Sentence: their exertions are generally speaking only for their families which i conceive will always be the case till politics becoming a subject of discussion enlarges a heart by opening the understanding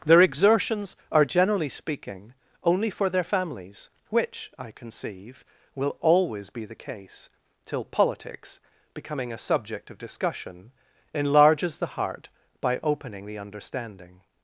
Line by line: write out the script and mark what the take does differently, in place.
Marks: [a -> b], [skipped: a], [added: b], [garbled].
their exertions are generally speaking only for their families which i conceive will always be the case till politics becoming a subject of discussion enlarges [a -> the] heart by opening the understanding